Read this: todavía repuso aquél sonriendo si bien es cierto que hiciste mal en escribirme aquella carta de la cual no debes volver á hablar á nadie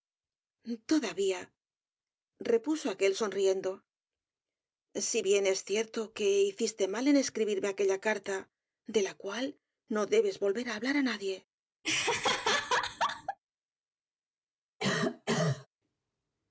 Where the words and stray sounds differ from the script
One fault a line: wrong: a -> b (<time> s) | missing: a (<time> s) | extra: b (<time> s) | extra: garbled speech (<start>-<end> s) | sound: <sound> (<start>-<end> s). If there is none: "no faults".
sound: laugh (11.8-13.4 s)
sound: cough (14.8-15.7 s)